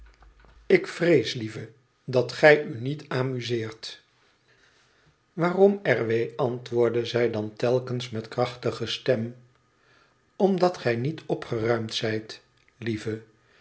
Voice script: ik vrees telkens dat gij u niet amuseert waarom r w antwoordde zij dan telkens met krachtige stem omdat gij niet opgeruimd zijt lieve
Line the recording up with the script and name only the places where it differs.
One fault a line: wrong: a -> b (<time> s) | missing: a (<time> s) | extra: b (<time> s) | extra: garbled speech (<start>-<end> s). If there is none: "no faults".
wrong: telkens -> lieve (1.3 s)